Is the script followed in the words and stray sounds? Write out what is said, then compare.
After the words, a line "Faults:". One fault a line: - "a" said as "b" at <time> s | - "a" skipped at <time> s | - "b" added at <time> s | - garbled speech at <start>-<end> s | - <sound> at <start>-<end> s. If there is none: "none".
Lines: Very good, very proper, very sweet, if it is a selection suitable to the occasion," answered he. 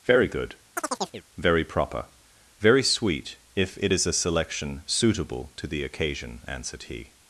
Very good, very proper, very sweet, if it is a selection suitable to the occasion," answered he.
Faults:
- chirp at 0.8-1.3 s